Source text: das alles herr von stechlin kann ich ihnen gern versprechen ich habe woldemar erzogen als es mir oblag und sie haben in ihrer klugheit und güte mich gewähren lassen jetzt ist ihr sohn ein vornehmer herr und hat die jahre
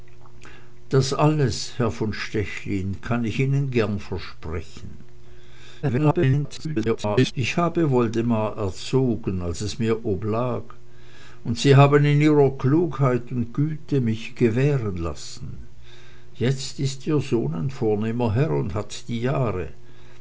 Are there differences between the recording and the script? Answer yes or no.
yes